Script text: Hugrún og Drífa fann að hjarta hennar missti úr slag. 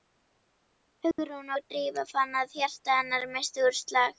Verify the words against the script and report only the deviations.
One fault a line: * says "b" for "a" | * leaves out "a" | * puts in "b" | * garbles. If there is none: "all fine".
all fine